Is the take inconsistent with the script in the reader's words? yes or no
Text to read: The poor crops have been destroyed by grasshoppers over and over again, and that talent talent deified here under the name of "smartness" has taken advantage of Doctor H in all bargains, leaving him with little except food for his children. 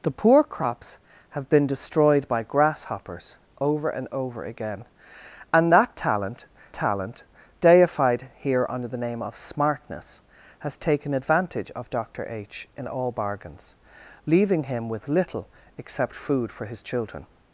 no